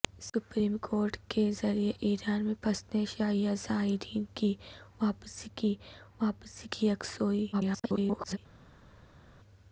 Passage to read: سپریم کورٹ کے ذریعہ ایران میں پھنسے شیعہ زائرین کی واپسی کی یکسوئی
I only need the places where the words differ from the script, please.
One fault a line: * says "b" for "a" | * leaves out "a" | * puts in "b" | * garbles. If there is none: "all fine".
* puts in "واپسی کی"
* garbles